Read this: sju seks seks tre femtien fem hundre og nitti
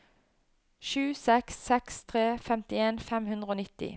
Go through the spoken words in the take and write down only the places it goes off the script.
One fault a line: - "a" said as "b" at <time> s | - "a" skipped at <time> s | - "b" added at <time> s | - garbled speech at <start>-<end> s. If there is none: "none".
none